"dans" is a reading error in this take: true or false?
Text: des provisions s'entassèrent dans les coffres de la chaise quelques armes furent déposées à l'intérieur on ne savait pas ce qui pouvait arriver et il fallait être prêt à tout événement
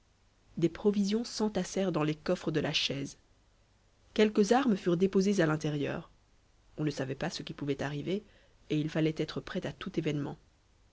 false